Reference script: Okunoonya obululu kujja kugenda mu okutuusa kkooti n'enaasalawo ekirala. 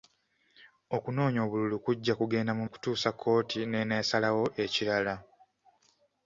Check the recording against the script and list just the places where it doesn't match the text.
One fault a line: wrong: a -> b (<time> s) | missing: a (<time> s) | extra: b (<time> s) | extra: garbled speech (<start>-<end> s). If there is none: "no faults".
no faults